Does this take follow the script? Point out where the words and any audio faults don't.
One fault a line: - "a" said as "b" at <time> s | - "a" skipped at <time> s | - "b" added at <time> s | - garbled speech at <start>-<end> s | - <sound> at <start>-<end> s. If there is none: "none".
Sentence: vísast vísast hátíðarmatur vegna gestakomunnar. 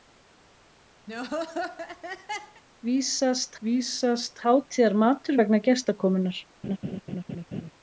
- laugh at 1.1-2.6 s
- laugh at 6.6-7.7 s